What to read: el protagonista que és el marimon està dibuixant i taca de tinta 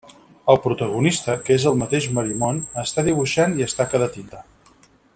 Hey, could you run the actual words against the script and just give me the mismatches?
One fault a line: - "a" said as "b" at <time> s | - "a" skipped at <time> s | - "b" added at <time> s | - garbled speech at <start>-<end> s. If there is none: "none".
- "mateix" added at 1.8 s
- "es" added at 3.7 s